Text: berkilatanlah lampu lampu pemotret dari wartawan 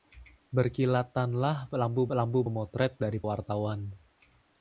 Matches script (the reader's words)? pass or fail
pass